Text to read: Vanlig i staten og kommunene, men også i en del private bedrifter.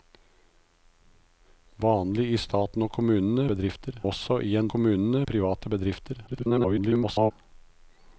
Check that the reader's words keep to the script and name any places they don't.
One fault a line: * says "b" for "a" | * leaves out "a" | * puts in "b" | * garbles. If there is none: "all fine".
* says "bedrifter" for "men"
* says "kommunene" for "del"
* garbles